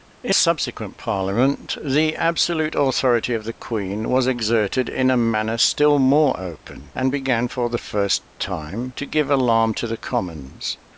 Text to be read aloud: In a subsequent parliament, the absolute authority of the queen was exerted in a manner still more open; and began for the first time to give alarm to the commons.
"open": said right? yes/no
yes